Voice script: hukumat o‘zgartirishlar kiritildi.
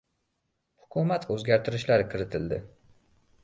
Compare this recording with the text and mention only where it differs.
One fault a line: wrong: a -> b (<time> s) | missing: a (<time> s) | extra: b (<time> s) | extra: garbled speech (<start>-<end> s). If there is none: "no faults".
no faults